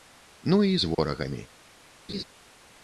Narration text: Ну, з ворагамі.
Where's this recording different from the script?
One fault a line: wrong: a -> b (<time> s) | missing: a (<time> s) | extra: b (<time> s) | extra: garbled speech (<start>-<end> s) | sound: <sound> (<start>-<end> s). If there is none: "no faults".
extra: і (0.6 s)
sound: dropout (0.9-1.0 s)
sound: laugh (2.1-2.2 s)